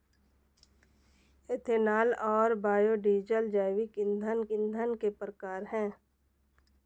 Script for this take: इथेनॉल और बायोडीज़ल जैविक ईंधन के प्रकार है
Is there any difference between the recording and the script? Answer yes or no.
yes